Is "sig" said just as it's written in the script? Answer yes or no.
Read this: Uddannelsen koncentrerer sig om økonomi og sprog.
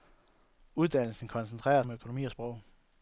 no